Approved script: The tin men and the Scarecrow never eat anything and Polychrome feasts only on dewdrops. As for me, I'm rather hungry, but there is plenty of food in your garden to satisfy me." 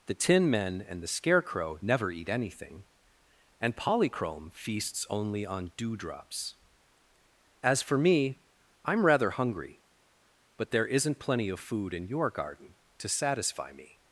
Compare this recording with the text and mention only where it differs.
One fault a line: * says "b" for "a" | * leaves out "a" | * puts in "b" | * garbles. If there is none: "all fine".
* says "isn't" for "is"